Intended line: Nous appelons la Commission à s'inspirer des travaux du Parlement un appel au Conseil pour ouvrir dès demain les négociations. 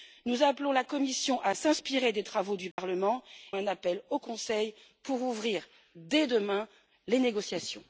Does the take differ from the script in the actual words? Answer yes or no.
no